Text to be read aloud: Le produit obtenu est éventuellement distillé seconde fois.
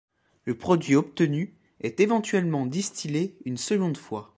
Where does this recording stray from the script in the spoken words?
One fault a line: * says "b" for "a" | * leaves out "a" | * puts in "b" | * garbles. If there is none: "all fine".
* puts in "une"